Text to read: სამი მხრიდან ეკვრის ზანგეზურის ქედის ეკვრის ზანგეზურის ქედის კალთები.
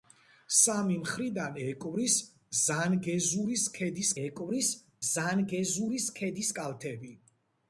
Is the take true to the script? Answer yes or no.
yes